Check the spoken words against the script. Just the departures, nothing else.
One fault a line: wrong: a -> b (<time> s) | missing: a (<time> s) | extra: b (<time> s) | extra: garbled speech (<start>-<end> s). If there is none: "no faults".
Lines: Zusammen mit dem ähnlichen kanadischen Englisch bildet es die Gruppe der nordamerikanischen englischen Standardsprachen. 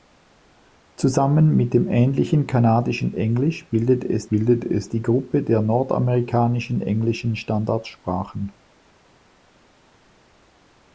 extra: bildet es (4.3 s)